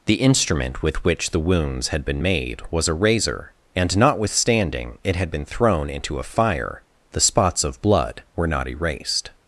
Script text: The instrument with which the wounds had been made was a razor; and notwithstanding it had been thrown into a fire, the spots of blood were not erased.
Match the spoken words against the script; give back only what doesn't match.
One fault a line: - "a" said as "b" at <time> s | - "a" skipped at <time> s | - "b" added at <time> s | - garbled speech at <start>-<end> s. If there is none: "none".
none